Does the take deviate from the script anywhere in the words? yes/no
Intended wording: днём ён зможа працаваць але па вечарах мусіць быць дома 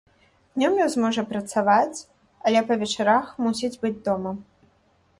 no